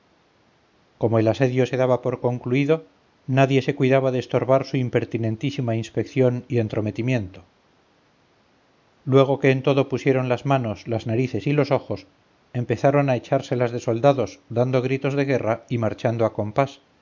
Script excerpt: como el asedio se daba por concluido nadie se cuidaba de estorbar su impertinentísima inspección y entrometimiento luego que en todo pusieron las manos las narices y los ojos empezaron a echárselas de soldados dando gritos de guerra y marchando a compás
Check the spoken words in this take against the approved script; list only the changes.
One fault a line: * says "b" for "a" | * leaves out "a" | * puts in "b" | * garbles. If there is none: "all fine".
all fine